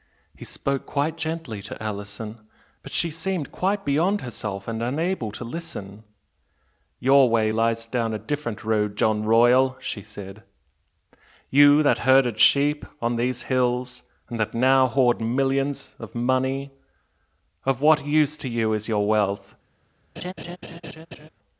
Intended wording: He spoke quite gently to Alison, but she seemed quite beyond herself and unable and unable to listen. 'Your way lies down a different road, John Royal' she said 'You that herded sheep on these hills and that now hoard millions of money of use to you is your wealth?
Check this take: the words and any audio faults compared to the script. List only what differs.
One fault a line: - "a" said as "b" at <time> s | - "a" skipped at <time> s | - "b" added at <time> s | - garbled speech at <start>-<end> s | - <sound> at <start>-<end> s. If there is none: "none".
- "and unable" skipped at 5.3 s
- "what" added at 17.8 s
- laugh at 20.2-21.3 s